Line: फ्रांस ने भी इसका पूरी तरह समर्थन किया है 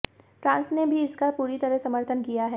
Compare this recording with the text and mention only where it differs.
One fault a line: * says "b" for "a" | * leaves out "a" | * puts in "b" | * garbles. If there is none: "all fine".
all fine